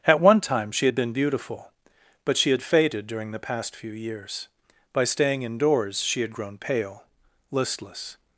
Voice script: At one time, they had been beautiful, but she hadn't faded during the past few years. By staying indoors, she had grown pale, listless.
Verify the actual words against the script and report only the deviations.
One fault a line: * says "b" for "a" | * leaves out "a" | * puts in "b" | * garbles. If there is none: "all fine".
* says "she" for "they"
* says "had" for "hadn't"